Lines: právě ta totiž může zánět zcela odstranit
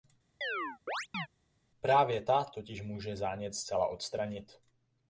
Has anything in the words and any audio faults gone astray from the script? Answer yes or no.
yes